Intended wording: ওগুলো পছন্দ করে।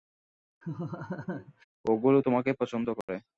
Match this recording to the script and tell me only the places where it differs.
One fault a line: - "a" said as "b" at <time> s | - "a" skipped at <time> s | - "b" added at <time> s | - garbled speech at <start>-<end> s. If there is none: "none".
- "তোমাকে" added at 2.2 s